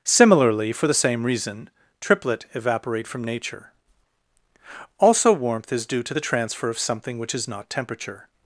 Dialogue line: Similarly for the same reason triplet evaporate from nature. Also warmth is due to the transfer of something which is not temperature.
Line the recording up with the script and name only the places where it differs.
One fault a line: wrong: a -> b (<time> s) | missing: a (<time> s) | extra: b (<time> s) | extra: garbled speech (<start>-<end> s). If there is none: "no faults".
no faults